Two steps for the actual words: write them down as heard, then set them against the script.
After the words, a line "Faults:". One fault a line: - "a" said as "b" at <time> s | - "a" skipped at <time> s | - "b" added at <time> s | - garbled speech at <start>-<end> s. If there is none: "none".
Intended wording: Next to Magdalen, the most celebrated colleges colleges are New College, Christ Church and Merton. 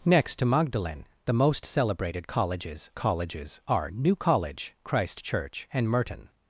Next to Magdalen, the most celebrated colleges colleges are New College, Christ Church and Merton.
Faults:
none